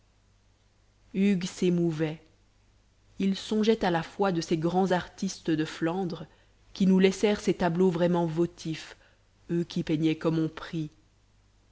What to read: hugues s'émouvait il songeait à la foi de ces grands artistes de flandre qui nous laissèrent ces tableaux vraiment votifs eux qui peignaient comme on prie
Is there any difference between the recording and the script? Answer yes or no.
no